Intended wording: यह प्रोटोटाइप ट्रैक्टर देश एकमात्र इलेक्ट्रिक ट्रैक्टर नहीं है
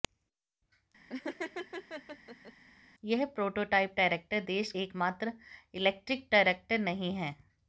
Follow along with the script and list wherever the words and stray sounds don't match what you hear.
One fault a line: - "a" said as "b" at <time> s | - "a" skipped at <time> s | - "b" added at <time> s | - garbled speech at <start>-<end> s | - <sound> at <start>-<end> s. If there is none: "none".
- laugh at 1.1-2.5 s